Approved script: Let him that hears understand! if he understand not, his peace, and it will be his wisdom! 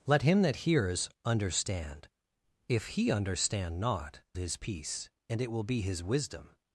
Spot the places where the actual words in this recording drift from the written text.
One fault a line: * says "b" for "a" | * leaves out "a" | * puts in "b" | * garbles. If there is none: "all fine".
all fine